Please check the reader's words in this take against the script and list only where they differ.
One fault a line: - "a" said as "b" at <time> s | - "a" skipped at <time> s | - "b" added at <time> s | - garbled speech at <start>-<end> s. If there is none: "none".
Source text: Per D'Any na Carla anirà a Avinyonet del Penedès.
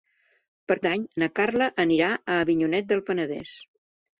none